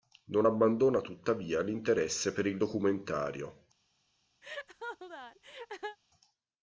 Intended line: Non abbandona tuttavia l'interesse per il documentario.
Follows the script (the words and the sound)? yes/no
no